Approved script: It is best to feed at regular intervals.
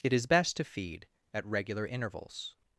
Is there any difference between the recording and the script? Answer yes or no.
no